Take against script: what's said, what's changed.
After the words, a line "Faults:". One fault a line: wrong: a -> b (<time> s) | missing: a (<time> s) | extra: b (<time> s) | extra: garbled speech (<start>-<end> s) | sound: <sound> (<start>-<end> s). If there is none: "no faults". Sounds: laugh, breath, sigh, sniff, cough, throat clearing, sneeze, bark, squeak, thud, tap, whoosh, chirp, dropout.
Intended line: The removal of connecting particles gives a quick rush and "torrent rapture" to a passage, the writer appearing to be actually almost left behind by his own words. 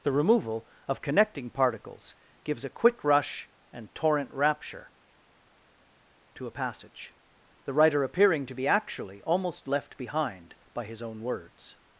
The removal of connecting particles gives a quick rush and "torrent rapture" to a passage, the writer appearing to be actually almost left behind by his own words.
Faults:
no faults